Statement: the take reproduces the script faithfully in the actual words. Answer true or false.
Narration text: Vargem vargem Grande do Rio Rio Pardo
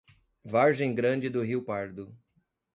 false